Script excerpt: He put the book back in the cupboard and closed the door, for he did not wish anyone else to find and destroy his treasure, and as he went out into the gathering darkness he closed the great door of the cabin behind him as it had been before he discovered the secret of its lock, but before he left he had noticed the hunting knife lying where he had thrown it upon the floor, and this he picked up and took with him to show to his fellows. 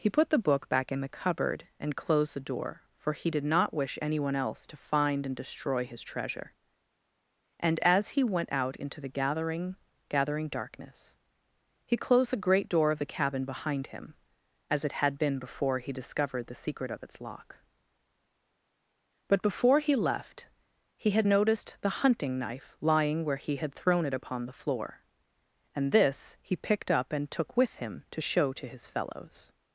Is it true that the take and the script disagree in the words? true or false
true